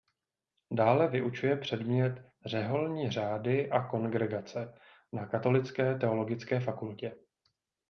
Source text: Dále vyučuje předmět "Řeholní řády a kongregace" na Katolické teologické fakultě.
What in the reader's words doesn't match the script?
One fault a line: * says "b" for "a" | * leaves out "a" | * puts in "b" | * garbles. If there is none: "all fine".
all fine